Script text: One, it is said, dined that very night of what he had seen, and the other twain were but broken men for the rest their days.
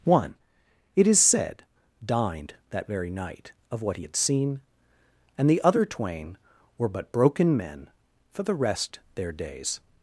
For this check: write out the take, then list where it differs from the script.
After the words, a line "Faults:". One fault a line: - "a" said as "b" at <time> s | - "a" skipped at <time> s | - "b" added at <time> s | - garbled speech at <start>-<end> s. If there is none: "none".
One, it is said, dined that very night of what he had seen, and the other twain were but broken men for the rest their days.
Faults:
none